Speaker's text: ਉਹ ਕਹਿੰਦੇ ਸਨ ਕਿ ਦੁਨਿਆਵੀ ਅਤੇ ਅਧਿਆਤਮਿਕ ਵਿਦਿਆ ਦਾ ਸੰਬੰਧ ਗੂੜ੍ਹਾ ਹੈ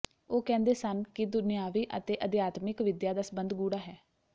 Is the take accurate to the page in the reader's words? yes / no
yes